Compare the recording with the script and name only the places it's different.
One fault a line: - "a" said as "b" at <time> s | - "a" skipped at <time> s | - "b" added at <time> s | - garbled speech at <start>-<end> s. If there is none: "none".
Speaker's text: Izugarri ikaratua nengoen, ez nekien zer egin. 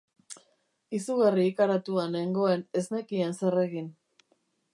none